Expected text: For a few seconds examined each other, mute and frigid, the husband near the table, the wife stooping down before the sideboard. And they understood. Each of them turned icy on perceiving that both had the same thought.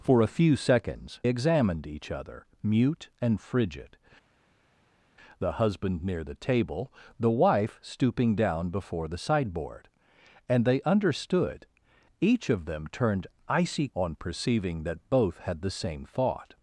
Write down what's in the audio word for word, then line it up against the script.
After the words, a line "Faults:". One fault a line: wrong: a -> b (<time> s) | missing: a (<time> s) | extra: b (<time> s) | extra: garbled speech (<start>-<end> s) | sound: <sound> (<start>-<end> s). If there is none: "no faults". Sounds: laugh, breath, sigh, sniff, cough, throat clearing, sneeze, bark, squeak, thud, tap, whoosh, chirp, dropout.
For a few seconds examined each other, mute and frigid, the husband near the table, the wife stooping down before the sideboard. And they understood. Each of them turned icy on perceiving that both had the same thought.
Faults:
no faults